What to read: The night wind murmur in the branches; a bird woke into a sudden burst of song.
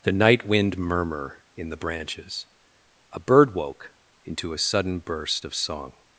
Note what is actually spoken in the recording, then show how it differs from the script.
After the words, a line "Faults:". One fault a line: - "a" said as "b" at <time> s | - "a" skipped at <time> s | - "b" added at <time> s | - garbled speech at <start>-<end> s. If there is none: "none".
The night wind murmur in the branches; a bird woke into a sudden burst of song.
Faults:
none